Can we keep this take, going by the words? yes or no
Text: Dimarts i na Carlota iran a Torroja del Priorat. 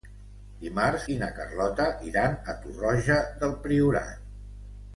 yes